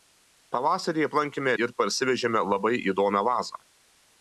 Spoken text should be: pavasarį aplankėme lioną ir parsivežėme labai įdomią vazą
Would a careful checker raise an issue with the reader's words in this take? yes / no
yes